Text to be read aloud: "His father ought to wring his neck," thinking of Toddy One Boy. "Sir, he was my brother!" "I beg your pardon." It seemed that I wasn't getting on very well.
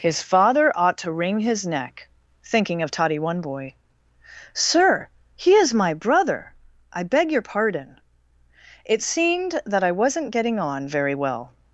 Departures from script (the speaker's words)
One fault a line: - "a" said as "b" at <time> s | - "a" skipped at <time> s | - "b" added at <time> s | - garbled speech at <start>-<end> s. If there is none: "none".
- "was" said as "is" at 5.5 s